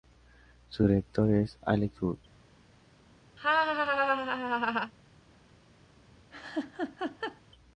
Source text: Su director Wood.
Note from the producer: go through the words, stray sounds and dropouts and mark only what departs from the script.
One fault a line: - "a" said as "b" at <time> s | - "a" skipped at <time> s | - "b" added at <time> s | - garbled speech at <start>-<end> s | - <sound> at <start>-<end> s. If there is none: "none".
- "es Alex" added at 1.3 s
- laugh at 3.4-4.9 s
- laugh at 6.3-7.4 s